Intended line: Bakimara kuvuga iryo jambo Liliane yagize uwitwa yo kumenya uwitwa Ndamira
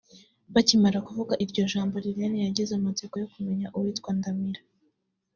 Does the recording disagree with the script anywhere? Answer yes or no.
yes